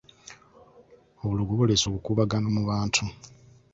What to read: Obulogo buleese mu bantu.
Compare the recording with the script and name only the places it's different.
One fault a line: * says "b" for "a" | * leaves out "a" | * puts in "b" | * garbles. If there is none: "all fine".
* puts in "obukuubagano"